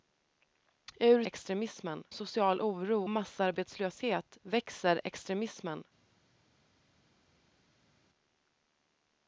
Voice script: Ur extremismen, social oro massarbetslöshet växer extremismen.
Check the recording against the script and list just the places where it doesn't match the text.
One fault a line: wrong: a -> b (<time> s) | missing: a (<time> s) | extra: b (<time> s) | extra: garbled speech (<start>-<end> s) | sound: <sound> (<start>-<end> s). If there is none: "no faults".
no faults